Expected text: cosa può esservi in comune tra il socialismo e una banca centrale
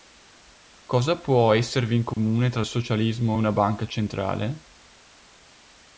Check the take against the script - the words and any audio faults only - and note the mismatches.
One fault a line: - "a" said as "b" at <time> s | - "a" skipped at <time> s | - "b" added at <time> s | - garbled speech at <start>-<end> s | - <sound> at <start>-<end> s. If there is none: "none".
- dropout at 2.1-2.2 s